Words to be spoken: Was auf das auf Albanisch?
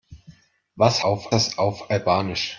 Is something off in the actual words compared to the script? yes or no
no